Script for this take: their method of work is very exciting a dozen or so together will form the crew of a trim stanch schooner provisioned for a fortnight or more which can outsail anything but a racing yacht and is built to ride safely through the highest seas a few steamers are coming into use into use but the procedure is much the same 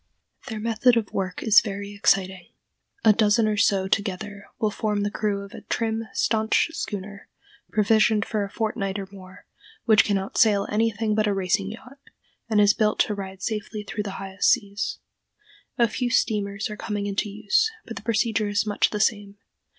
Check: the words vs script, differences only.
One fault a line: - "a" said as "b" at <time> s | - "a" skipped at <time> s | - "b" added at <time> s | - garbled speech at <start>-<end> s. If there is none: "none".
- "into use" skipped at 17.7 s